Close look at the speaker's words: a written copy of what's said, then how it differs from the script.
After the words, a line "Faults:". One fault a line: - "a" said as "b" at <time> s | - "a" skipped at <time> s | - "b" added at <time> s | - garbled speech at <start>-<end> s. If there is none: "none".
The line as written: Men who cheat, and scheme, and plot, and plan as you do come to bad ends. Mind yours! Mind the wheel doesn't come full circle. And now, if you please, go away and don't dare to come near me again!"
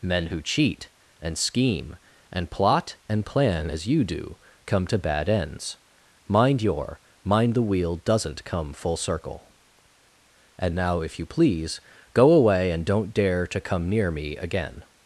Men who cheat, and scheme, and plot, and plan as you do come to bad ends. Mind your! Mind the wheel doesn't come full circle. And now, if you please, go away and don't dare to come near me again!"
Faults:
- "yours" said as "your" at 6.6 s